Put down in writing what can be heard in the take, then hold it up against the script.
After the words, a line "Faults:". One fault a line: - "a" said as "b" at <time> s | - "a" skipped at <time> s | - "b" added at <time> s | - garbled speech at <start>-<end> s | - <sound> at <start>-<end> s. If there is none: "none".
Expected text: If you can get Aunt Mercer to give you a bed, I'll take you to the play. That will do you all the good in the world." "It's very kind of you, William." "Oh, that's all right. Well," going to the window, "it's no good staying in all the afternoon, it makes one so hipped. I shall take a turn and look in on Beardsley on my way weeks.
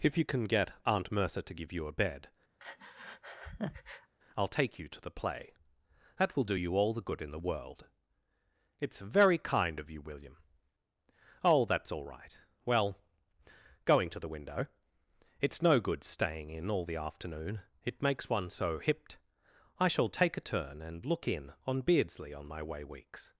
If you can get Aunt Mercer to give you a bed, I'll take you to the play. That will do you all the good in the world." "It's very kind of you, William." "Oh, that's all right. Well," going to the window, "it's no good staying in all the afternoon, it makes one so hipped. I shall take a turn and look in on Beardsley on my way weeks.
Faults:
- breath at 2.6-4.1 s